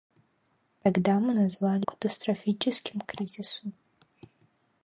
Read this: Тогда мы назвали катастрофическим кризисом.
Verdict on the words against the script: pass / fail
pass